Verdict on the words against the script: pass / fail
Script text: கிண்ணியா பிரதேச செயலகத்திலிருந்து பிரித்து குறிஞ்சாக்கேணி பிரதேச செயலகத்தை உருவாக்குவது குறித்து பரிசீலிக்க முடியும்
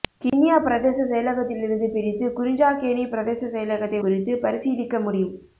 fail